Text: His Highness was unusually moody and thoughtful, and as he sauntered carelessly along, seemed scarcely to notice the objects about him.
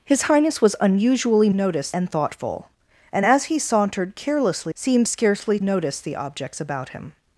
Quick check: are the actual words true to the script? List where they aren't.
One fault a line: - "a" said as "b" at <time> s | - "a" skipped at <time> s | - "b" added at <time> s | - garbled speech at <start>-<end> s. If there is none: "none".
- "moody" said as "notice" at 1.5 s
- "along" skipped at 4.7 s
- "to" skipped at 5.6 s